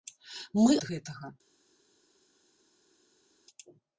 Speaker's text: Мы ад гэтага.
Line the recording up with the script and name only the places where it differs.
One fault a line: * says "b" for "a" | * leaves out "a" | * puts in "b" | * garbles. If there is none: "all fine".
all fine